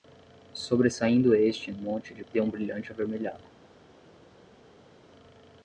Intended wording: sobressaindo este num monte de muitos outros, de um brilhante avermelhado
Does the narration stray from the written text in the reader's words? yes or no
yes